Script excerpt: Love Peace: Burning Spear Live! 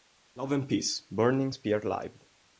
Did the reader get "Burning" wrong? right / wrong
right